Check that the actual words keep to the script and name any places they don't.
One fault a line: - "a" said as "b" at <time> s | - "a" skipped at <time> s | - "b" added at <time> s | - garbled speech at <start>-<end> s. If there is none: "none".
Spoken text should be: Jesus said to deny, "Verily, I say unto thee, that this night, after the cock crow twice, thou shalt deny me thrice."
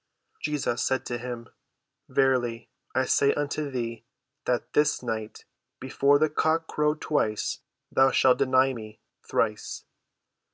- "deny" said as "him" at 1.2 s
- "after" said as "before" at 5.8 s